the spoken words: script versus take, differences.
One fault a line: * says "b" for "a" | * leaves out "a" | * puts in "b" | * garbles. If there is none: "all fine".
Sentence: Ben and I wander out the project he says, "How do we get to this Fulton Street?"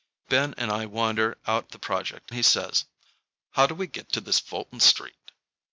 all fine